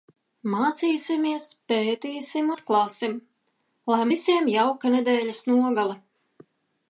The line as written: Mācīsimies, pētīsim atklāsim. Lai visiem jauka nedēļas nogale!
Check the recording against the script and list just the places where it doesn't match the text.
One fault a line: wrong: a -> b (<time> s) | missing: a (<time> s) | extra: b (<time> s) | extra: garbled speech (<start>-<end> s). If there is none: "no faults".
no faults